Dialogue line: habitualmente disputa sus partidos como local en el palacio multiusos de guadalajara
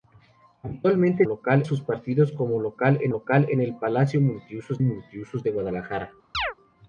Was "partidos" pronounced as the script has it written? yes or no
yes